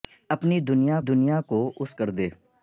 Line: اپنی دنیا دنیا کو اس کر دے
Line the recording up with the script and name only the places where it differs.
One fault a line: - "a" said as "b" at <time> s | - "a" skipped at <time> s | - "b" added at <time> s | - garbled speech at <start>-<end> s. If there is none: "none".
none